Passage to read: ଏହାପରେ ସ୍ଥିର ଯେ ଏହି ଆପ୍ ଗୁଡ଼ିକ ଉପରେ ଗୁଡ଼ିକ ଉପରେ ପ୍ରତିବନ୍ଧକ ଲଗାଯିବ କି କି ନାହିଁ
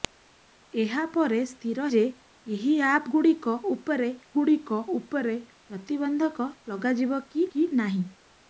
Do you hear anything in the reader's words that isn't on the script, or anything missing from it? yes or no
no